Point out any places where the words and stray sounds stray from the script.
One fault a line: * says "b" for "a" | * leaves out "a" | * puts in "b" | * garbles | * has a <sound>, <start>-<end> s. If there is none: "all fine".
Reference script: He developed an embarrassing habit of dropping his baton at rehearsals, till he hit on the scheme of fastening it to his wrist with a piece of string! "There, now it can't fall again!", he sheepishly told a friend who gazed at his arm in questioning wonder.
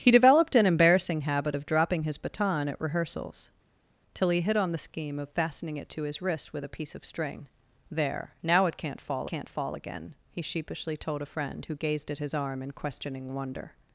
* puts in "can't fall"